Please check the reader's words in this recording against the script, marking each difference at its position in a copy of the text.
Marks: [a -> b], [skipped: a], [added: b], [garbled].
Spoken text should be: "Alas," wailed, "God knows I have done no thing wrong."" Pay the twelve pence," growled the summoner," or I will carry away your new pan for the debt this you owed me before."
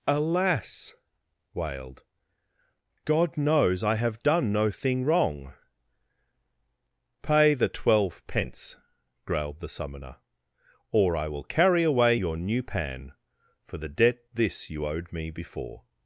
"Alas," wailed, "God knows I have done no thing wrong."" Pay the twelve pence," growled the summoner," or I will carry away your new pan for the debt this you owed me before."